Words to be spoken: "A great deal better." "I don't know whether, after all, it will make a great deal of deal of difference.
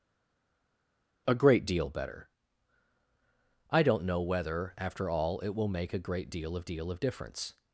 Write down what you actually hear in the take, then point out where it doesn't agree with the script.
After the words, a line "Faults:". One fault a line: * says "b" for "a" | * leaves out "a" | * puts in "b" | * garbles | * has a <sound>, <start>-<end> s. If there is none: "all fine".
"A great deal better." "I don't know whether, after all, it will make a great deal of deal of difference.
Faults:
all fine